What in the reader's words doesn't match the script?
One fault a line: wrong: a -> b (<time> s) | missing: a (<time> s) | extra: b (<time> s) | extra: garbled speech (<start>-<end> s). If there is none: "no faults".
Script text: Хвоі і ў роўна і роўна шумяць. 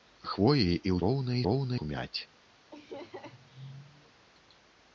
no faults